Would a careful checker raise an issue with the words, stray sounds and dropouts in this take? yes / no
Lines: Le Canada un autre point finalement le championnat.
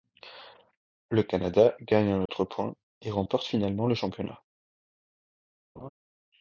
yes